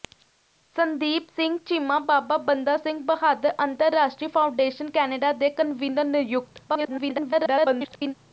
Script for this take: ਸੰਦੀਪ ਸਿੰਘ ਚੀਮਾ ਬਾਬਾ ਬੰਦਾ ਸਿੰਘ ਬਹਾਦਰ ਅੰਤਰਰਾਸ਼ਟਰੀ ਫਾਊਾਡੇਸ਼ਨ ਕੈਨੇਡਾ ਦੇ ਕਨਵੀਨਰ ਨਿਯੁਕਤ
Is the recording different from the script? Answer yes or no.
yes